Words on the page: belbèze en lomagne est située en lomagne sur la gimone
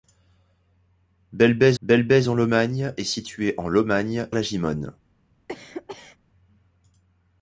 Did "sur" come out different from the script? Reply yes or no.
yes